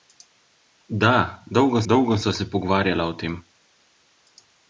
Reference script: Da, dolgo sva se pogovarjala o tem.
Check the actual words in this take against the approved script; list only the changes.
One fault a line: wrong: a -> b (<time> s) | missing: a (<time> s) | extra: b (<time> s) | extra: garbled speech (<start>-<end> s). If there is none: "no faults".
extra: dolgo (1.9 s)